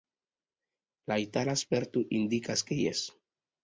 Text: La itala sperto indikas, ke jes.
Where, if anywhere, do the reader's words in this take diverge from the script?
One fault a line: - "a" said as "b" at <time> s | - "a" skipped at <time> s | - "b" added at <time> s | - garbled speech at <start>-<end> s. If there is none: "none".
none